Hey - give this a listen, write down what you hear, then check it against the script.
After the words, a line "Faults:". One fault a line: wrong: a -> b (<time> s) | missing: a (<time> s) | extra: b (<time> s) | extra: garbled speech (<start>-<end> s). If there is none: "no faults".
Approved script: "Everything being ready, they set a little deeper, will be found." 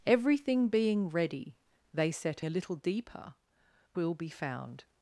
"Everything being ready, they set a little deeper, will be found."
Faults:
no faults